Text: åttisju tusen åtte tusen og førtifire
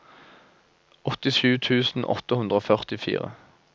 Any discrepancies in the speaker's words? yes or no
yes